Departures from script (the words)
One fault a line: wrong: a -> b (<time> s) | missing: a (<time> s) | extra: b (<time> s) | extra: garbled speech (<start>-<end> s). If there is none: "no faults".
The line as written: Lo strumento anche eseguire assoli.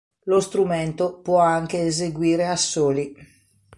extra: può (1.1 s)